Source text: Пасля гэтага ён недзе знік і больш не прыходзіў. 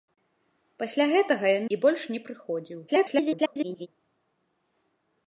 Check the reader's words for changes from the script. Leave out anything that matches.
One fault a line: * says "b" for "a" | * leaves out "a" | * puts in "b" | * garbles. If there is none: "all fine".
* leaves out "недзе знік"
* garbles